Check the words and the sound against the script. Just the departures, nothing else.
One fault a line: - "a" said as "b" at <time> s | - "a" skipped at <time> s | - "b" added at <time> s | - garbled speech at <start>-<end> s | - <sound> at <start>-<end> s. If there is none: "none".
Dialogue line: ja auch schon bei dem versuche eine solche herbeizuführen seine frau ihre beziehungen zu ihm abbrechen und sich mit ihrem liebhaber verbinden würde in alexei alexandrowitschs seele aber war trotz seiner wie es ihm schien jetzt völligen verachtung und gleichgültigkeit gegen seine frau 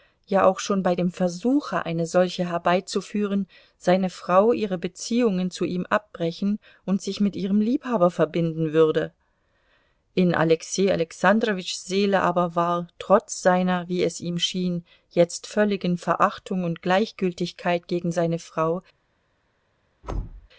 - thud at 20.0-20.5 s